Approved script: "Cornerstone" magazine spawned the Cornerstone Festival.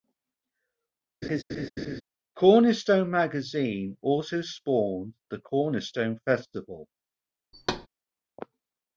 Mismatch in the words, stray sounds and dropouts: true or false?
true